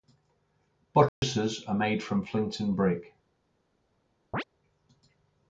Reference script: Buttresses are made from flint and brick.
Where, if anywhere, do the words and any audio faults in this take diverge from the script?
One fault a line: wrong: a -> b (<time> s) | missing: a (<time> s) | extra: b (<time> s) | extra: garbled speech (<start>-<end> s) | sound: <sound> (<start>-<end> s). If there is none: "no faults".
sound: dropout (1.1-1.2 s)
sound: chirp (4.3-4.4 s)